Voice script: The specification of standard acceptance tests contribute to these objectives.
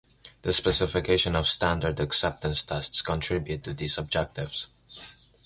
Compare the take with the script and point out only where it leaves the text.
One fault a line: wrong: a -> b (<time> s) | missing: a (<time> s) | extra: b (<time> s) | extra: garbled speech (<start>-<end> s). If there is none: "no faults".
no faults